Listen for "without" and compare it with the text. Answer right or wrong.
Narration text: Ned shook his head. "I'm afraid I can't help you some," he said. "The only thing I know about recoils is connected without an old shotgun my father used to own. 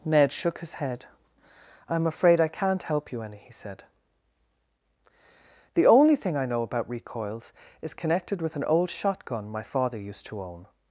wrong